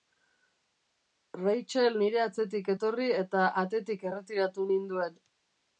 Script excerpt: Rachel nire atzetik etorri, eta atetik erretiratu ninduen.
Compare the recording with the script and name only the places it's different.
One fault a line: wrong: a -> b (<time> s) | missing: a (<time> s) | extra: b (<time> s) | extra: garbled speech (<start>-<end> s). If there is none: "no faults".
no faults